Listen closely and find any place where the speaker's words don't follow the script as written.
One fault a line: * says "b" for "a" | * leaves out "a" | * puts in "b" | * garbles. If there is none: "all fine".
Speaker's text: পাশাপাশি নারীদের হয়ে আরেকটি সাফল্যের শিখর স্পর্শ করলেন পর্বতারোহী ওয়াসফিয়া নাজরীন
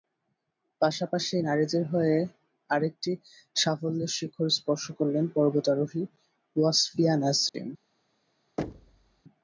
all fine